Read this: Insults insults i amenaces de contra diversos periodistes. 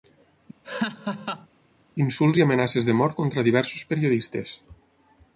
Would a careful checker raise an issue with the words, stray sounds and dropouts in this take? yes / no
yes